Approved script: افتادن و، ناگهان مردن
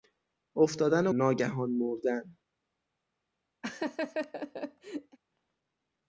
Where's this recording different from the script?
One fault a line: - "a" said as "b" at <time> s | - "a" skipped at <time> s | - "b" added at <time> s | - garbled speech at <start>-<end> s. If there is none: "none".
none